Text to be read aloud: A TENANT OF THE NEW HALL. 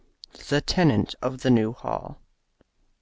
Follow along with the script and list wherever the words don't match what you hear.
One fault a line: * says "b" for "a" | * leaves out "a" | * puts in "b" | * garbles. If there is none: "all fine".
* says "THE" for "A"